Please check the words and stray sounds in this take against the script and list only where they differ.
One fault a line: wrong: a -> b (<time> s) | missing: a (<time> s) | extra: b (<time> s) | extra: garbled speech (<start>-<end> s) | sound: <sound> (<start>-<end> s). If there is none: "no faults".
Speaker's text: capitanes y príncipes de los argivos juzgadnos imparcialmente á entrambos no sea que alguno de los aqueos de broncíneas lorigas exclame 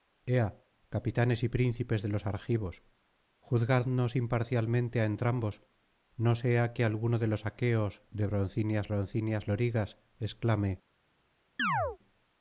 extra: broncíneas (8.9 s)
sound: chirp (11.6-12.0 s)